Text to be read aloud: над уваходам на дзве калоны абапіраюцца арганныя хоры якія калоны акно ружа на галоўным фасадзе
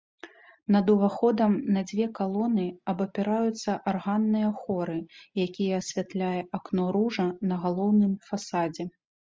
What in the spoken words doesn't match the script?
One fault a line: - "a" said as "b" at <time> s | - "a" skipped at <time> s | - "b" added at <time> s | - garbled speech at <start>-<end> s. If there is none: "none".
- "калоны" said as "асвятляе" at 5.9 s